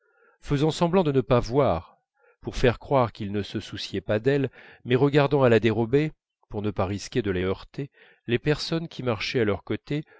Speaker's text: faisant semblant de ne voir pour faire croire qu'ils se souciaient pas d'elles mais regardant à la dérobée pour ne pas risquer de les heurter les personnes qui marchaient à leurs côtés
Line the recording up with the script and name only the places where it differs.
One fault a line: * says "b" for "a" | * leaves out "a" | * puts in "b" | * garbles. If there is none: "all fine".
* puts in "pas"
* puts in "ne"